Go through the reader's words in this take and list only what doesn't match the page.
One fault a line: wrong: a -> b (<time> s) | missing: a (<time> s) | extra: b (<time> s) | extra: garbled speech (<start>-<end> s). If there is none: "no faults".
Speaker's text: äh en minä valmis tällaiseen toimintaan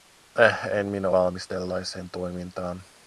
no faults